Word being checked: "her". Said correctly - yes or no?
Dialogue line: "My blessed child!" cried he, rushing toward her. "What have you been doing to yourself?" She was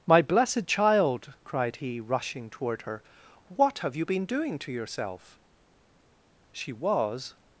yes